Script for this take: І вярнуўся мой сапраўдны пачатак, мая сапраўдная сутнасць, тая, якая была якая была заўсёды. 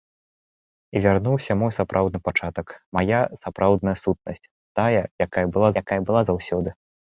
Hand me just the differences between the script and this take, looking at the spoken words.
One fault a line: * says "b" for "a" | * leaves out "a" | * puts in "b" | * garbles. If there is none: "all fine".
all fine